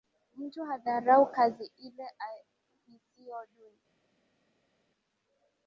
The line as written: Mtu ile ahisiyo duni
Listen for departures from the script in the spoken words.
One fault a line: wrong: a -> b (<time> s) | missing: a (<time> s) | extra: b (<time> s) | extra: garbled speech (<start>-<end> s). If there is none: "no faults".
extra: hadharau kazi (0.7 s)